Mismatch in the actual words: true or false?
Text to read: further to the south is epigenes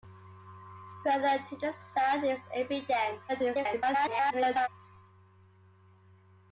true